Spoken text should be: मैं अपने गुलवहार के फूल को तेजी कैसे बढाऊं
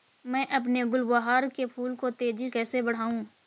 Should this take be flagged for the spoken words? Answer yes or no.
no